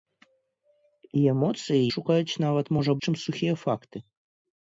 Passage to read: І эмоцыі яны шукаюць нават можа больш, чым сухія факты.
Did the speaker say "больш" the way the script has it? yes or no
no